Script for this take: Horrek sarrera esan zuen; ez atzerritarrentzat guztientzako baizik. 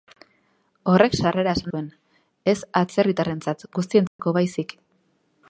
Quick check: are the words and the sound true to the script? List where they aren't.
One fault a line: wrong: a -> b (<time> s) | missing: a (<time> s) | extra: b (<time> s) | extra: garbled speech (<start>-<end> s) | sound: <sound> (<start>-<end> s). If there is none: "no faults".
sound: dropout (4.1-4.2 s)